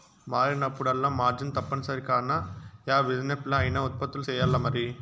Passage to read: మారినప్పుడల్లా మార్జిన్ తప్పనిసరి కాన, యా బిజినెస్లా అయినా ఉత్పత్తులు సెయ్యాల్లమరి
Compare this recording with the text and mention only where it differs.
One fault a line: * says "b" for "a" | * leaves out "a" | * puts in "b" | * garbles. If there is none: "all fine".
all fine